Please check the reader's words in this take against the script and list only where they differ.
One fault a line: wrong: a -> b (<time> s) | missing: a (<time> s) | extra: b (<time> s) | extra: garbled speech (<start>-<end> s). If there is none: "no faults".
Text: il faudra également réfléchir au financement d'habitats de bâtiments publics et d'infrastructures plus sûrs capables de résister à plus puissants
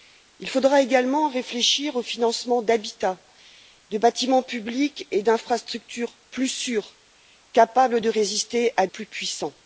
no faults